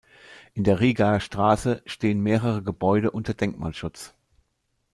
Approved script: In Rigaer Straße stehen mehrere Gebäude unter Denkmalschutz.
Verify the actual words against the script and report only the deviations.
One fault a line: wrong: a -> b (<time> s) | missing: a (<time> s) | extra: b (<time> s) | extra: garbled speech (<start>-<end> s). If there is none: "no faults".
extra: der (0.6 s)